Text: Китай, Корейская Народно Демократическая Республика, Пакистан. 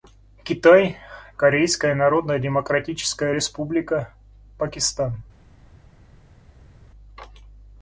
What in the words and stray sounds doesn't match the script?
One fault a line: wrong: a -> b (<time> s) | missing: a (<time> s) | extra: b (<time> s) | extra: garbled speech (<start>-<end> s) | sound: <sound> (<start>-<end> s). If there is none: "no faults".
no faults